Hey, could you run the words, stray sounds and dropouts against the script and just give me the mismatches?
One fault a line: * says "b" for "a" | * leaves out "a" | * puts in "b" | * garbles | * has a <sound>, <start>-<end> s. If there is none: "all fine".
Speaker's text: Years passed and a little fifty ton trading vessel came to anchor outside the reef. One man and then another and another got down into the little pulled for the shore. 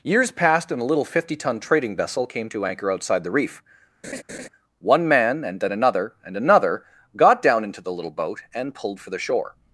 * has a laugh, 4.0-4.5 s
* puts in "boat and"